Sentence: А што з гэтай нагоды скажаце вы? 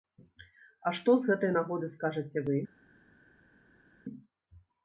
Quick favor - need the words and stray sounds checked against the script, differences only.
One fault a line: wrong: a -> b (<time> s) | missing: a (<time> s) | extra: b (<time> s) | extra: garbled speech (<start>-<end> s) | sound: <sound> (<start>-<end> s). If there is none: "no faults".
no faults